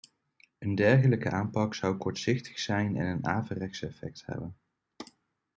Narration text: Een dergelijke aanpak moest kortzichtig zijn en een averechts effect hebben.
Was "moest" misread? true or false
true